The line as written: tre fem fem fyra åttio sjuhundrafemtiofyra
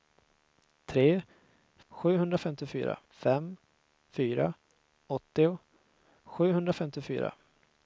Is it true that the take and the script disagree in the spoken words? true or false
true